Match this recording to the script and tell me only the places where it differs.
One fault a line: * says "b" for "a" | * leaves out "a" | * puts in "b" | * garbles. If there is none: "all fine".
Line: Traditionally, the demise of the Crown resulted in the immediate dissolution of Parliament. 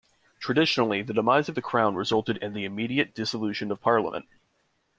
all fine